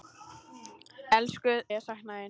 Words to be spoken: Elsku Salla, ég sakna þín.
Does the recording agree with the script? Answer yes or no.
no